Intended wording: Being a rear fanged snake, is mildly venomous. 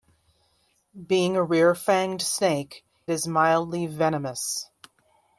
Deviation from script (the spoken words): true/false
false